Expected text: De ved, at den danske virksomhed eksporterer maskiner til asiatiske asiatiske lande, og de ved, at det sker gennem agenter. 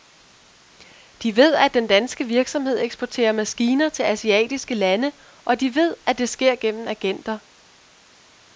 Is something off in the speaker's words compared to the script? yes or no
yes